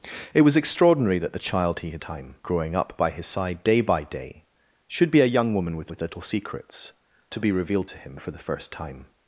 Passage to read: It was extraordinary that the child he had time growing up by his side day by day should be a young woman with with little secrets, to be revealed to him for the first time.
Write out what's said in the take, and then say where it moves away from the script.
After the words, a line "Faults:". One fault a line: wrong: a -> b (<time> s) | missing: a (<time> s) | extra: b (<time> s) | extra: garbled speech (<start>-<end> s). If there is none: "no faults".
It was extraordinary that the child he had time growing up by his side day by day should be a young woman with with little secrets, to be revealed to him for the first time.
Faults:
no faults